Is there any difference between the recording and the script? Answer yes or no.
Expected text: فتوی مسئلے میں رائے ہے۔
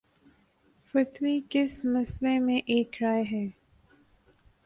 yes